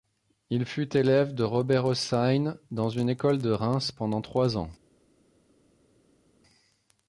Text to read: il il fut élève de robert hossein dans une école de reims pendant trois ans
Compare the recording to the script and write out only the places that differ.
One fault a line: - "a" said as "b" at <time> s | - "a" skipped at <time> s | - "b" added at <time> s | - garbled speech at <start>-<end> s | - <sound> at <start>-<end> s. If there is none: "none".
- "il" skipped at 0.7 s